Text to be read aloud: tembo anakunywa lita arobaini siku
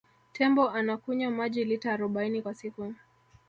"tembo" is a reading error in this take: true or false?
false